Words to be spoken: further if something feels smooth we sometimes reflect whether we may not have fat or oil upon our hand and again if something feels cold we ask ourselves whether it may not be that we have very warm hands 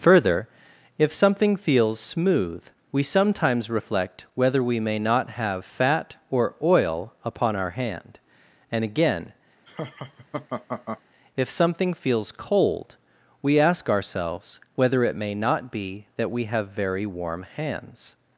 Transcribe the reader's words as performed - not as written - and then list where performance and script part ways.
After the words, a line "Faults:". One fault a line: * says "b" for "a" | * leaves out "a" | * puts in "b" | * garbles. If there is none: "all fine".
further if something feels smooth we sometimes reflect whether we may not have fat or oil upon our hand and again if something feels cold we ask ourselves whether it may not be that we have very warm hands
Faults:
all fine